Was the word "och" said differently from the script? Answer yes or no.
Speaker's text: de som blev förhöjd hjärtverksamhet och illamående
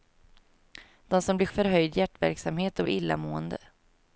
no